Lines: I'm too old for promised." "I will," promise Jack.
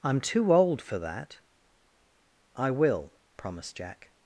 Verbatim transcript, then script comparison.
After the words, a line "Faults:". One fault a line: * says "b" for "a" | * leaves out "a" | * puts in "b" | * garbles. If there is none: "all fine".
I'm too old for that." "I will," promised Jack.
Faults:
* says "that" for "promised"
* says "promised" for "promise"